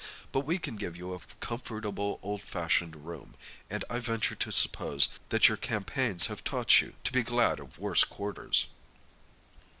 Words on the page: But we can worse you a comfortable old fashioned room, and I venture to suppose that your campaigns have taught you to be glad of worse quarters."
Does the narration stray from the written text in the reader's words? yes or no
yes